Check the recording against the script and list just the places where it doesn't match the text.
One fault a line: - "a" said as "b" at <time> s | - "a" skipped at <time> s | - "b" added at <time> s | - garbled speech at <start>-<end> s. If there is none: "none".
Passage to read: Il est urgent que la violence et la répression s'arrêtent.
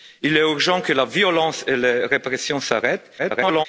- garbled speech at 3.2-3.7 s